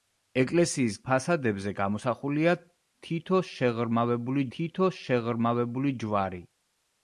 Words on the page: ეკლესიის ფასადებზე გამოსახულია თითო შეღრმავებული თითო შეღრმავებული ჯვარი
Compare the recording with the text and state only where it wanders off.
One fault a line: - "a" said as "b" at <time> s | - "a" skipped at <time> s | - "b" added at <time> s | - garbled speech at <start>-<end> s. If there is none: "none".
none